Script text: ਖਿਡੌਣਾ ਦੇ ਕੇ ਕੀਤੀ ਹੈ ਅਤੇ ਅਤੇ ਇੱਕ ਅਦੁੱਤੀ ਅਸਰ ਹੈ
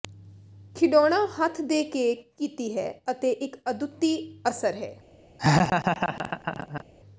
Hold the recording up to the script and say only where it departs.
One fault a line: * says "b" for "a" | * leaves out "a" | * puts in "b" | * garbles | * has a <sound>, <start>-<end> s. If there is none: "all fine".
* puts in "ਹੱਥ"
* leaves out "ਅਤੇ"
* has a laugh, 5.4-6.8 s